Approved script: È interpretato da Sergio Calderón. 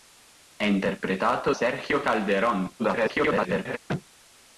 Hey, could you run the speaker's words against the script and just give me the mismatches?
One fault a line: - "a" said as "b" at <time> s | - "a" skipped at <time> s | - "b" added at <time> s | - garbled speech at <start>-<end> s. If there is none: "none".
- "da" skipped at 1.5 s
- garbled speech at 2.8-3.8 s